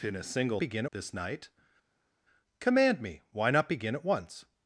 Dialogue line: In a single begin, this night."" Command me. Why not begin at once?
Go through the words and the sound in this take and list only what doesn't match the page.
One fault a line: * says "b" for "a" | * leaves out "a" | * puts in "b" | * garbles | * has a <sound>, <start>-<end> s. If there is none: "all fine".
all fine